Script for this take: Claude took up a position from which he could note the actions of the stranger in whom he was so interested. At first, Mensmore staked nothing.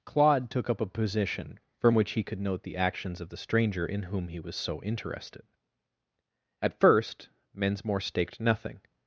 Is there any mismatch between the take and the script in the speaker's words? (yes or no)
no